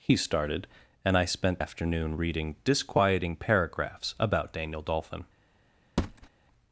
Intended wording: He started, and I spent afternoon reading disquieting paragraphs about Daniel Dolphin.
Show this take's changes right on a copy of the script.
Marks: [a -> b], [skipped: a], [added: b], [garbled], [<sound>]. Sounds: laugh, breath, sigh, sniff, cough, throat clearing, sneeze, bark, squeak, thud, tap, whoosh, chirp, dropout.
He started, and I spent afternoon reading disquieting paragraphs about Daniel Dolphin. [thud]